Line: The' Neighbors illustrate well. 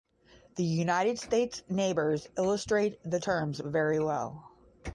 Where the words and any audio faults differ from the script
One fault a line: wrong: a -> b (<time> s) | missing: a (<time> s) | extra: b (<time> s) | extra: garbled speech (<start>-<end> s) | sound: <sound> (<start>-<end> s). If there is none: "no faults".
extra: United States (0.6 s)
extra: the terms very (3.0 s)